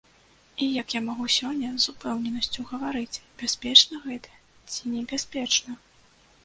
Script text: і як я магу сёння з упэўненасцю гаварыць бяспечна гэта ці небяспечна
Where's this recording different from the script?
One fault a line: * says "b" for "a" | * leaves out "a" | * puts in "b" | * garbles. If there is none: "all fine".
all fine